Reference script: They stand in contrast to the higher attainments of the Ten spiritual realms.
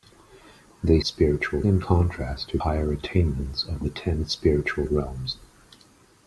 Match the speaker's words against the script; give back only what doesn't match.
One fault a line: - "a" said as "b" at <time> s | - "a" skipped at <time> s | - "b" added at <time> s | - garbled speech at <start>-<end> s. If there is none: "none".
- "stand" said as "spiritual" at 1.0 s
- "the" skipped at 2.6 s